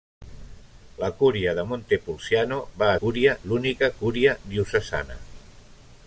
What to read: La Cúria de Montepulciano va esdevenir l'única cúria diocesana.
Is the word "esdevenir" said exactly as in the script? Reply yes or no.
no